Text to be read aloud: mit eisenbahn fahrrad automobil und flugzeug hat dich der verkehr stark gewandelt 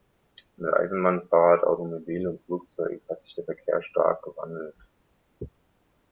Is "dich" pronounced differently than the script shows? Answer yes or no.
yes